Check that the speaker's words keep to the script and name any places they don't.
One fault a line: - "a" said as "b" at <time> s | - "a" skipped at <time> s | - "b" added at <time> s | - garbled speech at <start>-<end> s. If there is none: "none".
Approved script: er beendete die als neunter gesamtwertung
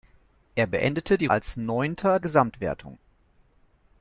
none